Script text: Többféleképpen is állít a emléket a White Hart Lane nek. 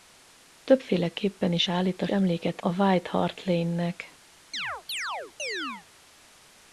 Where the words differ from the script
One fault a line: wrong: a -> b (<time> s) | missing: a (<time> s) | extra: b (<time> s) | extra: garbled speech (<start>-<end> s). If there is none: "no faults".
no faults